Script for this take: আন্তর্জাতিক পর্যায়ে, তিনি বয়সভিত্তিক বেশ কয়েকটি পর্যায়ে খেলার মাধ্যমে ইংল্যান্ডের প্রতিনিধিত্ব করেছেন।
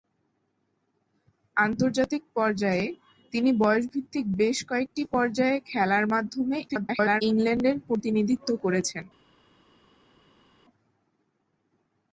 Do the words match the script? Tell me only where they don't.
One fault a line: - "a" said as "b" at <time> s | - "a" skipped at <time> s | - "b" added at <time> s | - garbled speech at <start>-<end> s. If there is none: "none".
- garbled speech at 6.7-7.2 s